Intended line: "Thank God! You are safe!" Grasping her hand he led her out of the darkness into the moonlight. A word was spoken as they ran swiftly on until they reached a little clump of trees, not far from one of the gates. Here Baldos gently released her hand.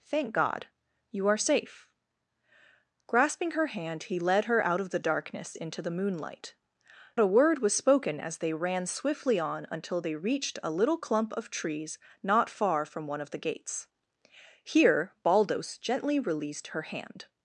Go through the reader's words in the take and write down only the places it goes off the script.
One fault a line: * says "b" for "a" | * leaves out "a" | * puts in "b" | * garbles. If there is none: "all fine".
all fine